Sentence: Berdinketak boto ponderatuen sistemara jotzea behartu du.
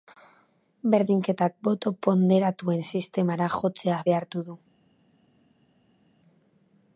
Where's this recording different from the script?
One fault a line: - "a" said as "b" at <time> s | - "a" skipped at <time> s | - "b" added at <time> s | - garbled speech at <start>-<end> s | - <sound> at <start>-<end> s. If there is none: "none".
none